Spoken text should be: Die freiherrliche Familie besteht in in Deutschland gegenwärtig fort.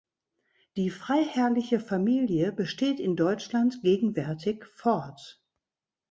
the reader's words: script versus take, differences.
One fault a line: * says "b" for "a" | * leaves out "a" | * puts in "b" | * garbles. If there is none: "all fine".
* leaves out "in"